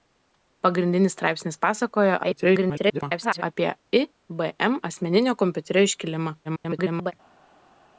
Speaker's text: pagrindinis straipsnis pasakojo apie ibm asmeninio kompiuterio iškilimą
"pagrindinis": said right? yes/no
yes